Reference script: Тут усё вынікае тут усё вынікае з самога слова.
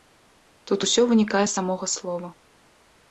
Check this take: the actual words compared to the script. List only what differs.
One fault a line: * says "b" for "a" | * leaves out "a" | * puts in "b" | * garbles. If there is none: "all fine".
* leaves out "тут усё вынікае"